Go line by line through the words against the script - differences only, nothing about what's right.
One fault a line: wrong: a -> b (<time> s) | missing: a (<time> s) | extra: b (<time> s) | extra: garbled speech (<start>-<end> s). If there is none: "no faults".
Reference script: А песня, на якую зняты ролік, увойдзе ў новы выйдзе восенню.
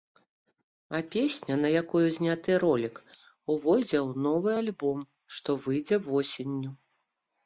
extra: альбом што (4.6 s)